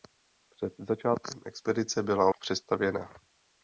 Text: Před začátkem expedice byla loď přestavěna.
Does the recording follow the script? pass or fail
fail